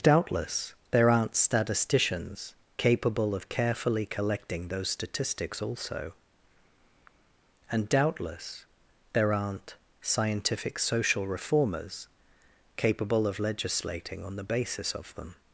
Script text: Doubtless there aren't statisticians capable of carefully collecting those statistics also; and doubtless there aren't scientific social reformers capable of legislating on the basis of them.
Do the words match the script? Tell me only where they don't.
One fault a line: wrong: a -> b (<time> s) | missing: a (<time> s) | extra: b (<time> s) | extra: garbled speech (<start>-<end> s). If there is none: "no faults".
no faults